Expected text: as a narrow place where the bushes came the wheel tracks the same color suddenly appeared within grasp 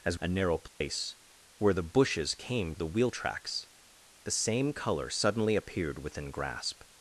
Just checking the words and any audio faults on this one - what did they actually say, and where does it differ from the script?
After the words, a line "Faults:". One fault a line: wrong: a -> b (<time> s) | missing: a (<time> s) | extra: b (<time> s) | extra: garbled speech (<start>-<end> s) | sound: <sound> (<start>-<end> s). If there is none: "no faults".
as a narrow place where the bushes came the wheel tracks the same color suddenly appeared within grasp
Faults:
sound: dropout (0.7-0.8 s)